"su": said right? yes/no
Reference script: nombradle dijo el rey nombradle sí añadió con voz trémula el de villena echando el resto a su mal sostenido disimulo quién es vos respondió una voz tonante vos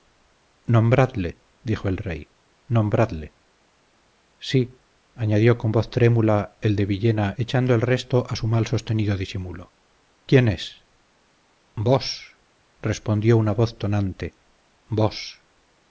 yes